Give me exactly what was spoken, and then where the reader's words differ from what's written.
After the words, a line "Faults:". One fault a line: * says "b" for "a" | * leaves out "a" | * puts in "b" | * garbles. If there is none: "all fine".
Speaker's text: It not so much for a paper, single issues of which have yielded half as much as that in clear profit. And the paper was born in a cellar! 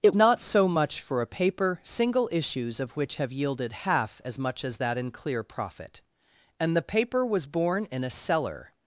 It not so much for a paper, single issues of which have yielded half as much as that in clear profit. And the paper was born in a cellar!
Faults:
all fine